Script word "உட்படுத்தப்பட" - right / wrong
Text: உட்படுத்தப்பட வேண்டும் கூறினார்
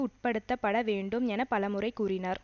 right